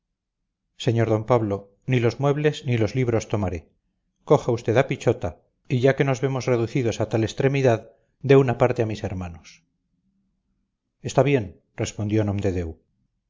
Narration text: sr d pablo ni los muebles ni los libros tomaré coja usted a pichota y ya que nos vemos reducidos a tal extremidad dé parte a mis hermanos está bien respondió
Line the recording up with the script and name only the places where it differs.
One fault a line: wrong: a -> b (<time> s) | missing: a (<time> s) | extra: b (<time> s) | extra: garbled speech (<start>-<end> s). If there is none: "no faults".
extra: una (8.4 s)